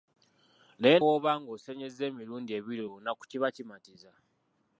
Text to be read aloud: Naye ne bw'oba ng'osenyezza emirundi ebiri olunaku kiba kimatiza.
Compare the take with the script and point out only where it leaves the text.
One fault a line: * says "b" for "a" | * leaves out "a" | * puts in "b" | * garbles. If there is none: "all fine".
* leaves out "ne"